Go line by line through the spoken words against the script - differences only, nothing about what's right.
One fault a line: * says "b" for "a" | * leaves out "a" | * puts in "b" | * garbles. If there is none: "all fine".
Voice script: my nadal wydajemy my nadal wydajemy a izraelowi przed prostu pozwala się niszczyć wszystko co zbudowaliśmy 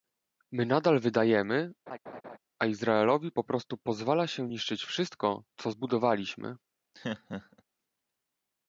* leaves out "my nadal wydajemy"
* says "po" for "przed"